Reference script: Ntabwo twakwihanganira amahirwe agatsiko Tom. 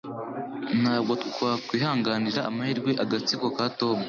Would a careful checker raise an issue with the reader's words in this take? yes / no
yes